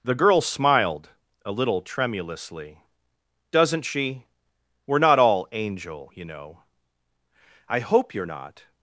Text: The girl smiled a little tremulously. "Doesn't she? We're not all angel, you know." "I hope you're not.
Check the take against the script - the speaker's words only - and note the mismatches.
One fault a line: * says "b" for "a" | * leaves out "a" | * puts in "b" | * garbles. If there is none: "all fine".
all fine